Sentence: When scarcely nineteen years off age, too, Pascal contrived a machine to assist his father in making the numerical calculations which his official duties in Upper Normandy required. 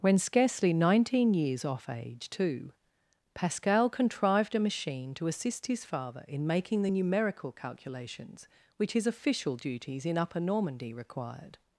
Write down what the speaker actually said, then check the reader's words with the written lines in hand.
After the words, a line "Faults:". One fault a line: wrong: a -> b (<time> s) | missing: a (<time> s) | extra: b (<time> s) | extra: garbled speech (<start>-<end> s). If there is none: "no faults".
When scarcely nineteen years off age, too, Pascal contrived a machine to assist his father in making the numerical calculations which his official duties in Upper Normandy required.
Faults:
no faults